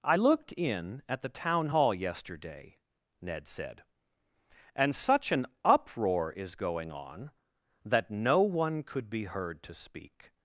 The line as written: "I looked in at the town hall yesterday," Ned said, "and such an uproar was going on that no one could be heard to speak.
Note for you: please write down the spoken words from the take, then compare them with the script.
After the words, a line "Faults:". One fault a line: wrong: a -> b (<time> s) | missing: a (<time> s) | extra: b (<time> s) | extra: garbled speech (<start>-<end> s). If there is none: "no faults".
"I looked in at the town hall yesterday," Ned said, "and such an uproar is going on that no one could be heard to speak.
Faults:
wrong: was -> is (6.3 s)